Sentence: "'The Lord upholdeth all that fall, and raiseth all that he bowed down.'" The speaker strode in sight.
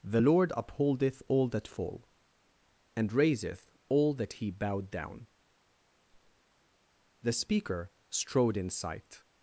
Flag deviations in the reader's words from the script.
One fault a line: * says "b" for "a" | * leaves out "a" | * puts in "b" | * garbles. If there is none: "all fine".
all fine